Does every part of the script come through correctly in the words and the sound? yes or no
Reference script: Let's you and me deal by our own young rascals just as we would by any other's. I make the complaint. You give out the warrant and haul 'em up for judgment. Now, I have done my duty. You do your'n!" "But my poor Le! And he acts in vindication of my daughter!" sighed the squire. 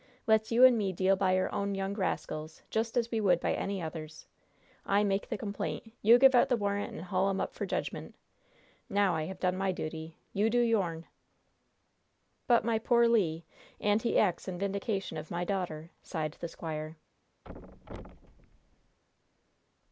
no